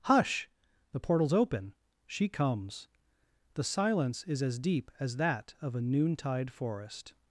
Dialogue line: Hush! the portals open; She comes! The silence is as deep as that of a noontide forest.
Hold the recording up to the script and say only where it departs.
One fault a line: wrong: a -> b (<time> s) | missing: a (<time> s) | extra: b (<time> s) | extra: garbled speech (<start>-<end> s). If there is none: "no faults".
no faults